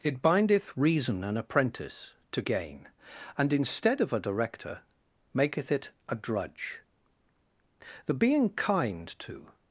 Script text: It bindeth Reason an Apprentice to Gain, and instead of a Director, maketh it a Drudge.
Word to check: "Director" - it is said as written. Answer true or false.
true